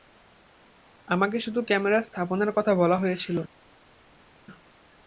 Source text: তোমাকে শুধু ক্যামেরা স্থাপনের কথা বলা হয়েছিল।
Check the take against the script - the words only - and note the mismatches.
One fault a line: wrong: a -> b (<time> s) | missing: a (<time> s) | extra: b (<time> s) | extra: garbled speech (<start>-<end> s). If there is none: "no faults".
wrong: তোমাকে -> আমাকে (1.1 s)